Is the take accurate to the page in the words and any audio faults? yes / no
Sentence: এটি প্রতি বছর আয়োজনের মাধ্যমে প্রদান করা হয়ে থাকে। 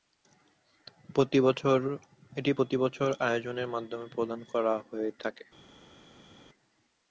yes